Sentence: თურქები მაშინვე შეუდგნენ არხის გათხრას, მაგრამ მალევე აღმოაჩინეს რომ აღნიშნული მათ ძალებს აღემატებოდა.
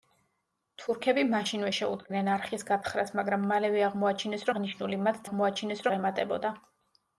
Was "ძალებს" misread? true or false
true